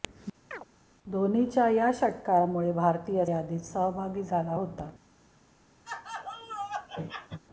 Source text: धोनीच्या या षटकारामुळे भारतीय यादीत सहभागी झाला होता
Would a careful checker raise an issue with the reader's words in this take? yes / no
no